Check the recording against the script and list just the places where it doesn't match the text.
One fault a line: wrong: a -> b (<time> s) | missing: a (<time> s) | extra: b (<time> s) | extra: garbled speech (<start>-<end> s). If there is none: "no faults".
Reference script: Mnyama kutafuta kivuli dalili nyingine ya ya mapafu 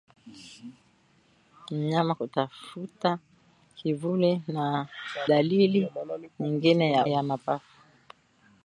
no faults